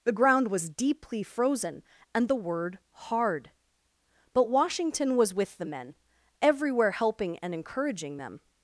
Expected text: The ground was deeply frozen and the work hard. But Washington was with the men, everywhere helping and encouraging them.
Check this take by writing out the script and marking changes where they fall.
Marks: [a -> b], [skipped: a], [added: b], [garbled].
The ground was deeply frozen and the [work -> word] hard. But Washington was with the men, everywhere helping and encouraging them.